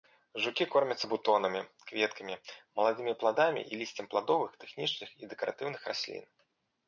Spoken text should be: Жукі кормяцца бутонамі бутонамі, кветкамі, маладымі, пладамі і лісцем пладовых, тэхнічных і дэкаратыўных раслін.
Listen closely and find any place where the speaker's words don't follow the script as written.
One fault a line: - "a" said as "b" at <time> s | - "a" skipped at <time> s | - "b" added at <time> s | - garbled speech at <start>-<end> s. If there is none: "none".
- "бутонамі" skipped at 1.6 s